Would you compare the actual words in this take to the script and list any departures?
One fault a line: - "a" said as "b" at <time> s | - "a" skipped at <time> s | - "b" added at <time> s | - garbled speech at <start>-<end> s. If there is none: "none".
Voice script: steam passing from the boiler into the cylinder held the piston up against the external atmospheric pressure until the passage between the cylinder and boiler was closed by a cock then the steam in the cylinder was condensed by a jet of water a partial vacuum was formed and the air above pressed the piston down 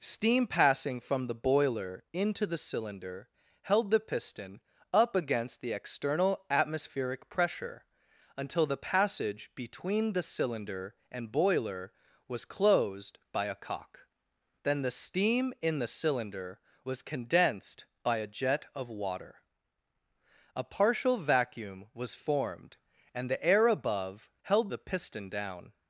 - "pressed" said as "held" at 24.4 s